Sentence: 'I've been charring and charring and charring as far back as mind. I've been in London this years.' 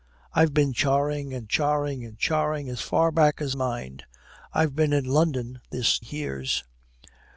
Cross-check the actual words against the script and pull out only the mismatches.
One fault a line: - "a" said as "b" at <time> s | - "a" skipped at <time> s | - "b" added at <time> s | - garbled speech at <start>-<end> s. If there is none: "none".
none